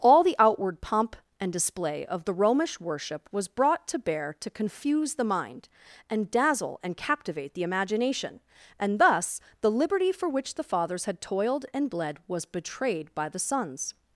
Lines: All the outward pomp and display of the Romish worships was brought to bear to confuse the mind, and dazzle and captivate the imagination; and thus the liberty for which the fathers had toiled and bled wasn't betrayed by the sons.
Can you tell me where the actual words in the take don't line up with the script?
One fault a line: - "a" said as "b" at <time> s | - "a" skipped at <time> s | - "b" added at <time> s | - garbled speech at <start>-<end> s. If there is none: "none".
- "worships" said as "worship" at 2.8 s
- "wasn't" said as "was" at 12.3 s